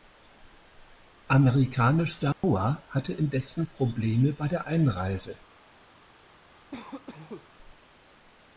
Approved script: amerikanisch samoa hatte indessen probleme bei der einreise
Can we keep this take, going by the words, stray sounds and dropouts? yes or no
no